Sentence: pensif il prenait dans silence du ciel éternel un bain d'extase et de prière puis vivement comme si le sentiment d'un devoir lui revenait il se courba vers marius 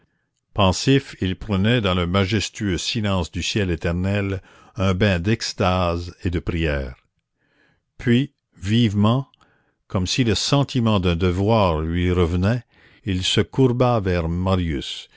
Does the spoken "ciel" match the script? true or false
true